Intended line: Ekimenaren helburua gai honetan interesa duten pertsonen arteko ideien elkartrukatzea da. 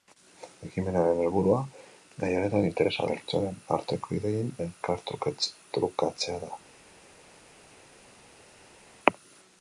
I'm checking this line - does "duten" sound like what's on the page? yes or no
no